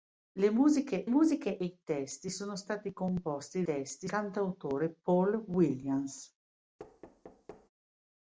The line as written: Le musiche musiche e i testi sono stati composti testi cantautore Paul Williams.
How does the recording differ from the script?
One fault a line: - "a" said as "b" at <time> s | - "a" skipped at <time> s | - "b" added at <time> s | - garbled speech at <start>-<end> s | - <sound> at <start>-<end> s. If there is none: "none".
- thud at 6.8-7.7 s